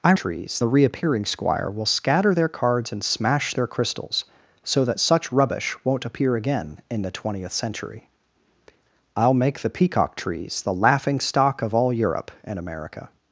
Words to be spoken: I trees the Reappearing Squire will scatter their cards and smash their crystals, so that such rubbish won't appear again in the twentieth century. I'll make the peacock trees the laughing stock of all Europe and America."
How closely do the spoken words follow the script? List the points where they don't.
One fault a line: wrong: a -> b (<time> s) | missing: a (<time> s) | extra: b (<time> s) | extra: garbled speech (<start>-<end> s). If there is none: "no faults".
no faults